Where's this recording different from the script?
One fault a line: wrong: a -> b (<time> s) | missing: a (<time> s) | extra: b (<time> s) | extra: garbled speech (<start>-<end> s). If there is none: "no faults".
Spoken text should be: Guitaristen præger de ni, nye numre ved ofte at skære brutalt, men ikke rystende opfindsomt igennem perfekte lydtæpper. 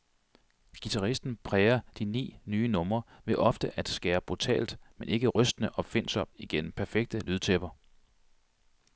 no faults